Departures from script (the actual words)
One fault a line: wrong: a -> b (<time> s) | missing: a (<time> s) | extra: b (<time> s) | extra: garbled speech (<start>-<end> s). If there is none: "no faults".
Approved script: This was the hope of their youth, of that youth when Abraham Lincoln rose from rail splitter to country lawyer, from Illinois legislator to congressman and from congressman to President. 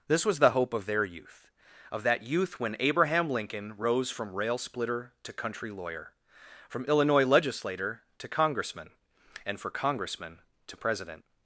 wrong: from -> for (9.6 s)